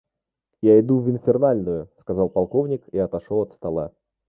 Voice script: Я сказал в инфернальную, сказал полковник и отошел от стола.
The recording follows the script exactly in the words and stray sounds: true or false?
false